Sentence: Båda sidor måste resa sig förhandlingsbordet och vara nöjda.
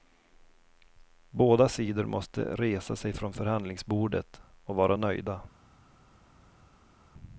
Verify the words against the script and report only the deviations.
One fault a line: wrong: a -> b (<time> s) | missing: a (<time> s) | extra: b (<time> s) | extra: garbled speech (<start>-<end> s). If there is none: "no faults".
extra: från (3.1 s)